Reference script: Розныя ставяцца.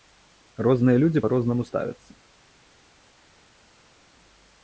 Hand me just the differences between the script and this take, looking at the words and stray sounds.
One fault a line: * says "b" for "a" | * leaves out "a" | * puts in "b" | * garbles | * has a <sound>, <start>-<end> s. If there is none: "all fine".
* puts in "людзі па рознаму"